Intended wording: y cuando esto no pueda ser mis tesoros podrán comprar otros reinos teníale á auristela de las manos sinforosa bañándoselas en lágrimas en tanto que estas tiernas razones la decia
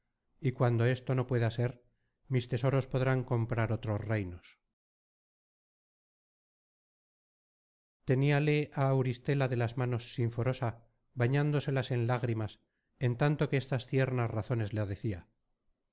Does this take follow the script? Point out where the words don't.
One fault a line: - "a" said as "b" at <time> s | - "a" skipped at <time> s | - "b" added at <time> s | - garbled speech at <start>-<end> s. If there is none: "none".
none